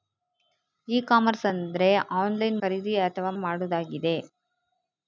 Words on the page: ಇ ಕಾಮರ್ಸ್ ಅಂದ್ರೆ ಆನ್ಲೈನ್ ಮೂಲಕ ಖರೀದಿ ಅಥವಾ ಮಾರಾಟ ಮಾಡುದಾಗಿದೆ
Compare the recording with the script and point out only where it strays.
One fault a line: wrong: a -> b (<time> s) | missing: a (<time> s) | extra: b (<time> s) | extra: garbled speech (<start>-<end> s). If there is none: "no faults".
missing: ಮೂಲಕ (2.6 s)
missing: ಮಾರಾಟ (3.3 s)